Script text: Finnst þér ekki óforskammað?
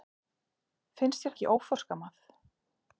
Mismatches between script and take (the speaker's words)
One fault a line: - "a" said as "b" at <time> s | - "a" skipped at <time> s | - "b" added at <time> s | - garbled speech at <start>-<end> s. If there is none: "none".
none